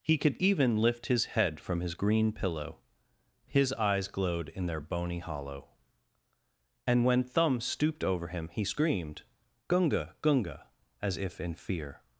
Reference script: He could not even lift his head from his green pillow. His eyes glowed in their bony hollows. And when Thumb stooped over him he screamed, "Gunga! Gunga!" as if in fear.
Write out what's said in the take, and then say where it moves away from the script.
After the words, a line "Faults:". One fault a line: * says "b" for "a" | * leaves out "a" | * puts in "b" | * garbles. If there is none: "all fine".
He could even lift his head from his green pillow. His eyes glowed in their bony hollow. And when Thumb stooped over him he screamed, "Gunga! Gunga!" as if in fear.
Faults:
* leaves out "not"
* says "hollow" for "hollows"